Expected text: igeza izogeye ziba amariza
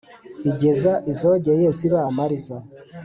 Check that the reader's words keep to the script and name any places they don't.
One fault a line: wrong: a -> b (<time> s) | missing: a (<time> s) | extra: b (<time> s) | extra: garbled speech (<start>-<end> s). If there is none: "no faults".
no faults